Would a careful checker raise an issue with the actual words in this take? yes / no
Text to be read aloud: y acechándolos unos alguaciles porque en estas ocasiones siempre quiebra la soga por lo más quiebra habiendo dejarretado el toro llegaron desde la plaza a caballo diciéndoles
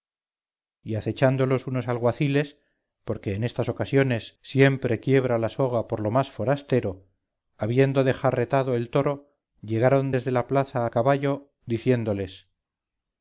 yes